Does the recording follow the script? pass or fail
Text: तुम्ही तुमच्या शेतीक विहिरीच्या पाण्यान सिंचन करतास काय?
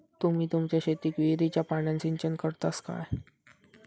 pass